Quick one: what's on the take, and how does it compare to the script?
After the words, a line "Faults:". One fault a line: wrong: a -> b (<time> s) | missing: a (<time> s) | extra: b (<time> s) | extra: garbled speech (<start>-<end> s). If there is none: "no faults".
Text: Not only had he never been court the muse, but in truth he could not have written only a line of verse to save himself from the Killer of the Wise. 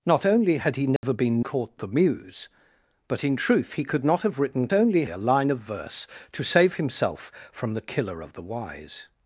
Not only had he never been court the muse, but in truth he could not have written only a line of verse to save himself from the Killer of the Wise.
Faults:
no faults